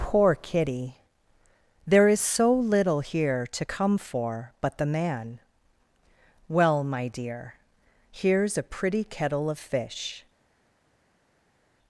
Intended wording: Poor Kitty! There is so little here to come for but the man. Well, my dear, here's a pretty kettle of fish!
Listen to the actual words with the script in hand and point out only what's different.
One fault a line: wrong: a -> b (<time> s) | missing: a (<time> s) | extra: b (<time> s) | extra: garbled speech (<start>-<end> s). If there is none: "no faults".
no faults